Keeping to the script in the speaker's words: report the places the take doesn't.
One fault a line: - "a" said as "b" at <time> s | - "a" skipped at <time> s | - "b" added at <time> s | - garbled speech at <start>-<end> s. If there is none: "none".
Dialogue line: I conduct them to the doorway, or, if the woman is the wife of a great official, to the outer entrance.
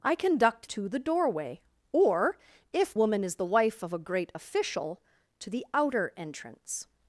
- "them" skipped at 0.7 s
- "the" skipped at 2.9 s